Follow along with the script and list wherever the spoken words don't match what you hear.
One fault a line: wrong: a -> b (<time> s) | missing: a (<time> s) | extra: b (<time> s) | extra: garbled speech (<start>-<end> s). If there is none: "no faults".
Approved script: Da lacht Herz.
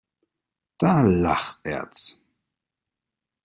no faults